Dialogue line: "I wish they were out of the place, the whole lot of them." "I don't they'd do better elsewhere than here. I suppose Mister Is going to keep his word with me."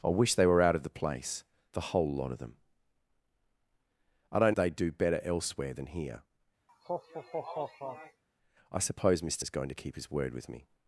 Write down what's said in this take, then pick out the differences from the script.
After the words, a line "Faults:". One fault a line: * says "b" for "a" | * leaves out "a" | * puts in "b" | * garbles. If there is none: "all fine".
"I wish they were out of the place, the whole lot of them." "I don't they'd do better elsewhere than here. I suppose Mister Is going to keep his word with me."
Faults:
all fine